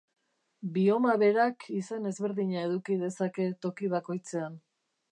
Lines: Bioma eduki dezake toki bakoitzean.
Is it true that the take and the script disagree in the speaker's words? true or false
true